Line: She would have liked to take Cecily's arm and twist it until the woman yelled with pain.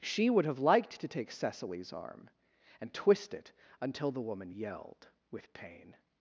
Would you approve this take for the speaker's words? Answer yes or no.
yes